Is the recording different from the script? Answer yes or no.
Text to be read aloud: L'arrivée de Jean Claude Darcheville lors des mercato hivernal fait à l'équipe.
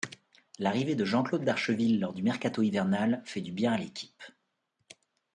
yes